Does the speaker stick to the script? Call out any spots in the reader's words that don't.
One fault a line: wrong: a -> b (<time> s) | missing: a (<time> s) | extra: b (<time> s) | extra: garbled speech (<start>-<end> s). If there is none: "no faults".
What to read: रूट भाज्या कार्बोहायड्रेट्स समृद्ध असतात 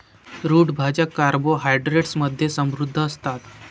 extra: मध्ये (2.2 s)